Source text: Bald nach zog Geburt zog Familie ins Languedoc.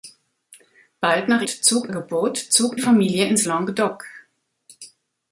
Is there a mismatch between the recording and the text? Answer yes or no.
no